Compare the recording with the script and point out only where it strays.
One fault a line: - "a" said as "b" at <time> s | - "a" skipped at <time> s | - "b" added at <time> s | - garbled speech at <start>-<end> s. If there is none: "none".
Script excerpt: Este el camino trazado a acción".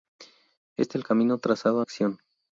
none